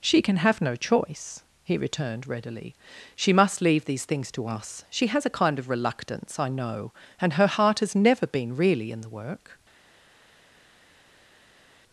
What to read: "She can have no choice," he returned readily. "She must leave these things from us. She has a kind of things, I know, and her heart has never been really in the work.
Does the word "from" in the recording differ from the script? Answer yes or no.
yes